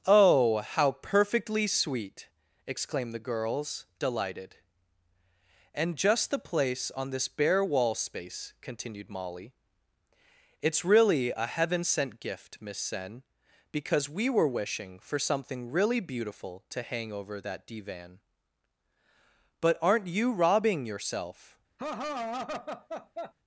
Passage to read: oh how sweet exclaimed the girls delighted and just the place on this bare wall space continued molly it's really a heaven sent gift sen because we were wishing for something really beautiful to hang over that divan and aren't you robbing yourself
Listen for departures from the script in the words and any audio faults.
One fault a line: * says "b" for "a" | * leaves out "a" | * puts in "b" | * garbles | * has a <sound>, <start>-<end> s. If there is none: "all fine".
* puts in "perfectly"
* puts in "miss"
* says "but" for "and"
* has a laugh, 21.8-23.3 s